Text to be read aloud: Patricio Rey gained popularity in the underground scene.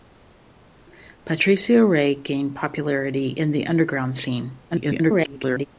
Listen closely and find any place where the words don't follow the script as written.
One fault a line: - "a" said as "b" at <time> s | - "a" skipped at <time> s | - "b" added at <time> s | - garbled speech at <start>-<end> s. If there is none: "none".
- garbled speech at 4.7-5.7 s